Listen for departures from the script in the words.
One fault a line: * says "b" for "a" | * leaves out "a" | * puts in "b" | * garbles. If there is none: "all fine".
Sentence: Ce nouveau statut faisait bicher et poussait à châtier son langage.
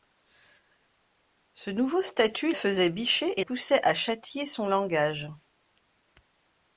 all fine